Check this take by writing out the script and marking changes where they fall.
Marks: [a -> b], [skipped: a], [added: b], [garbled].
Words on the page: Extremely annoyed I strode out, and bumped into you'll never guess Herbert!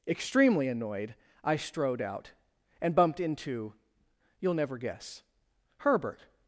Extremely annoyed I strode out, and bumped into you'll never guess Herbert!